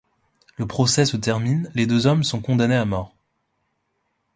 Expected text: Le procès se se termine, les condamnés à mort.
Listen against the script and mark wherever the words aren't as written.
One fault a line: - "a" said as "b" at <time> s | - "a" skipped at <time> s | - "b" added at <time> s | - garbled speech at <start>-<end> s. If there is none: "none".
- "se" skipped at 1.2 s
- "deux hommes sont" added at 1.9 s